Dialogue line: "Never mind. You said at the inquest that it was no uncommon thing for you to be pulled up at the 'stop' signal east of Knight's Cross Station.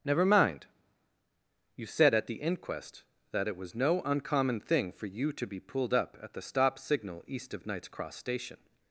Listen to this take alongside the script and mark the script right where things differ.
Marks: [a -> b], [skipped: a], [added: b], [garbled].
"Never mind. You said at the inquest that it was no uncommon thing for you to be pulled up at the 'stop' signal east of Knight's Cross Station.